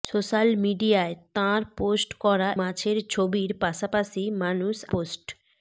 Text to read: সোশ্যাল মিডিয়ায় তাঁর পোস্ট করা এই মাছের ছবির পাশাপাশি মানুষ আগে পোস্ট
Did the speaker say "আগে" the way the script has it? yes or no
no